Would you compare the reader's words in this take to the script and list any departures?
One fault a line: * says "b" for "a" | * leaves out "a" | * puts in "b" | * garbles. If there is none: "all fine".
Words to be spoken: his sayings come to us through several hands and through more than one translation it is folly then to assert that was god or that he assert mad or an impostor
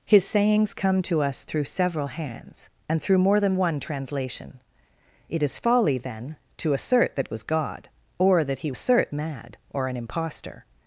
all fine